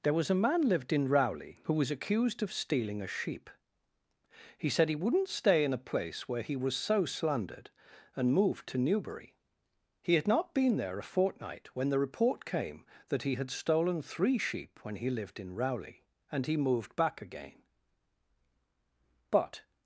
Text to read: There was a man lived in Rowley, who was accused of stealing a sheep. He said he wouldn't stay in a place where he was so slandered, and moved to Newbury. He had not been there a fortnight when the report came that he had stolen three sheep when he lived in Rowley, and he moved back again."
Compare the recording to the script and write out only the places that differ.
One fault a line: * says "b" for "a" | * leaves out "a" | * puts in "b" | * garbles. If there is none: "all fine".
* puts in "But"